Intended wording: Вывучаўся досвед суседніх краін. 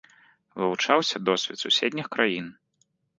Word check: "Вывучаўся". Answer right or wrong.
right